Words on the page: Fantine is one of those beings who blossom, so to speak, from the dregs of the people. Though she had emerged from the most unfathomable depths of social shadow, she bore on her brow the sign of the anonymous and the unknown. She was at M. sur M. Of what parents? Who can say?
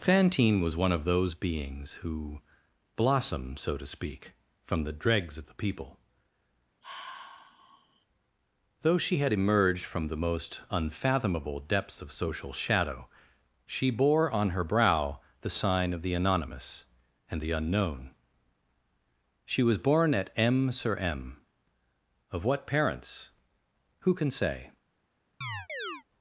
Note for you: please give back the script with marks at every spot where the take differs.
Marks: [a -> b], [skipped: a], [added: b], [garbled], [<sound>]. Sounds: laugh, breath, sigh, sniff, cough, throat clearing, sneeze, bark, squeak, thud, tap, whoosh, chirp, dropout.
Fantine [is -> was] one of those beings who blossom, so to speak, from the dregs of the people. [sigh] Though she had emerged from the most unfathomable depths of social shadow, she bore on her brow the sign of the anonymous and the unknown. She was [added: born] at M. sur M. Of what parents? Who can say? [chirp]